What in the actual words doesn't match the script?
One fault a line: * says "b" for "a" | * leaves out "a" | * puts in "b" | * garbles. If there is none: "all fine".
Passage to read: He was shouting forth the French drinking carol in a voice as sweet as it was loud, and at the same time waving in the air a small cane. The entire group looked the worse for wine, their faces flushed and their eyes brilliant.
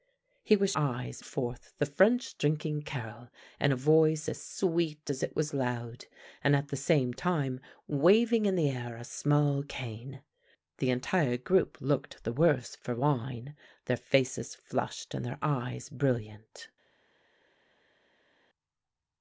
* says "eyes" for "shouting"